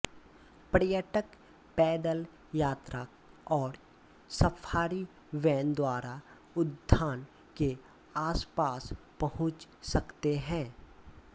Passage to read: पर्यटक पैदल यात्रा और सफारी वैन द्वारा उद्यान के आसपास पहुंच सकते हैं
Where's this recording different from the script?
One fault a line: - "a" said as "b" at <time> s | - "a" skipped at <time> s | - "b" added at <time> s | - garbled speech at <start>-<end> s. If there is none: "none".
none